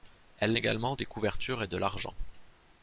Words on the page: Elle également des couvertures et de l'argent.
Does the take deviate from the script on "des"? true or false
false